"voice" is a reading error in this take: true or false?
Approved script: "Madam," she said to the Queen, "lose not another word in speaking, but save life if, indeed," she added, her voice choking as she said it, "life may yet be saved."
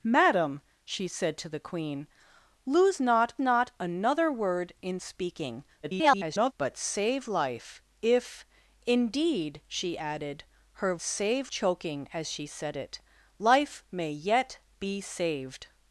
true